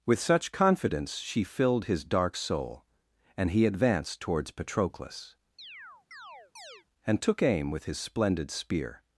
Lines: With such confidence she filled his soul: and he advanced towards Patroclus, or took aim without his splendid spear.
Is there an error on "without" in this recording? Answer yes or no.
yes